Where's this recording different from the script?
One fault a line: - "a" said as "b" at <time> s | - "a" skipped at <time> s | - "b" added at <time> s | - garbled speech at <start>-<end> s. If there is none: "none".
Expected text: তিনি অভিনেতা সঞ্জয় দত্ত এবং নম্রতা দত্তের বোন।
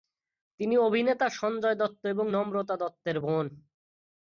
none